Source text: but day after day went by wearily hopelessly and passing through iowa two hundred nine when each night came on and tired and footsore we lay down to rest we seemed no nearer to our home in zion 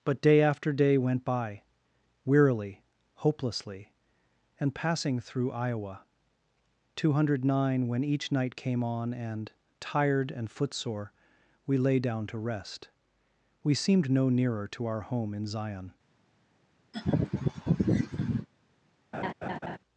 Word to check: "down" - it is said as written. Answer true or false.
true